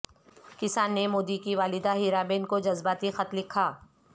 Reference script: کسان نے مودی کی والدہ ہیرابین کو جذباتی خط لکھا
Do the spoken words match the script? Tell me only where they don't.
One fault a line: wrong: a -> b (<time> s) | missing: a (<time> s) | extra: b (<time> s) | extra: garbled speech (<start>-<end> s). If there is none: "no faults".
no faults